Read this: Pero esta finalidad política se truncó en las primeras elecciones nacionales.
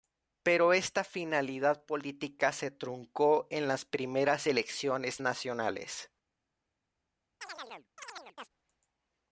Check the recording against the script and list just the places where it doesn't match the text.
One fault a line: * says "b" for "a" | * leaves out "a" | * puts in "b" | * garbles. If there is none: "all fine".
all fine